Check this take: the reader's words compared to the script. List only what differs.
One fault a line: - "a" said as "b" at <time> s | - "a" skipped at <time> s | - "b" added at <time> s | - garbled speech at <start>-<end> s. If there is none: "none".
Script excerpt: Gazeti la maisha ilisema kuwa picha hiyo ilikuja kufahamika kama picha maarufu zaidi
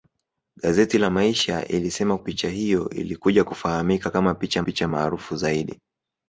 - "kuwa" skipped at 2.2 s
- "picha" added at 4.6 s